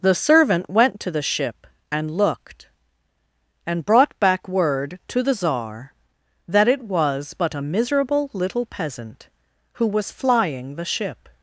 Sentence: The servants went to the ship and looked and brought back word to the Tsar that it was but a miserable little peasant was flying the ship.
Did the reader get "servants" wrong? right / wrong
wrong